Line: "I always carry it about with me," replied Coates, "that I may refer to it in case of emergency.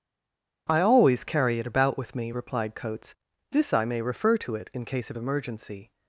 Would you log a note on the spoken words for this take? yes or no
yes